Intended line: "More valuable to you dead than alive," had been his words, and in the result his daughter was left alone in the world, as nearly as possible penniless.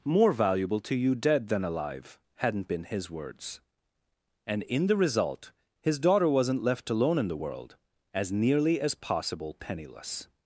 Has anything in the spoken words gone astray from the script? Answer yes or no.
yes